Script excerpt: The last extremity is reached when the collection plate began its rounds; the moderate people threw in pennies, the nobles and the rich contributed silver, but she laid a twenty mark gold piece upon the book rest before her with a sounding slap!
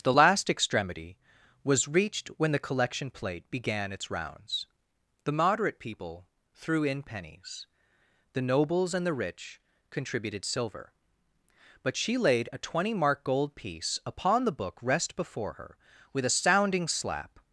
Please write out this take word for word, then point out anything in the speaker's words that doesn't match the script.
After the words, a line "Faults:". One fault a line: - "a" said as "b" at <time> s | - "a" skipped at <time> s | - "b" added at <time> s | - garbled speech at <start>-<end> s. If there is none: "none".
The last extremity was reached when the collection plate began its rounds; the moderate people threw in pennies, the nobles and the rich contributed silver, but she laid a twenty mark gold piece upon the book rest before her with a sounding slap!
Faults:
- "is" said as "was" at 1.6 s